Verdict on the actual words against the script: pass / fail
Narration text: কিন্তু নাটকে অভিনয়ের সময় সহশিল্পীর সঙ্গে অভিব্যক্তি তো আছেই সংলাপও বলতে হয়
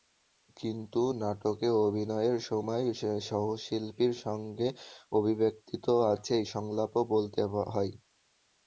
pass